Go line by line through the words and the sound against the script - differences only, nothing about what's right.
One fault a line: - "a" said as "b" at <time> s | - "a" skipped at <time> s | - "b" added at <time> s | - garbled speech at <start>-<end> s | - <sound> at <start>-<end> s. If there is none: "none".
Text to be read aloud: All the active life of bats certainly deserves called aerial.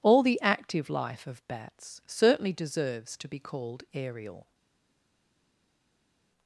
- "to be" added at 3.2 s